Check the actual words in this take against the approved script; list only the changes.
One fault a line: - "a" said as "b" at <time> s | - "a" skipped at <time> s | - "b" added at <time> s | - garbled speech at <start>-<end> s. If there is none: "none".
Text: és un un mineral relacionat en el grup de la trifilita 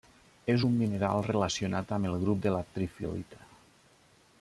- "un" skipped at 0.8 s
- "en" said as "amb" at 2.0 s